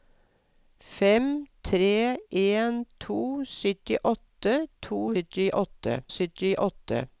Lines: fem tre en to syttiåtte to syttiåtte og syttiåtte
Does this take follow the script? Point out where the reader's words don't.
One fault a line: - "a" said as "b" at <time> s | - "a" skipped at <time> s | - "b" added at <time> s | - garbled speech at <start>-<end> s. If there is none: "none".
none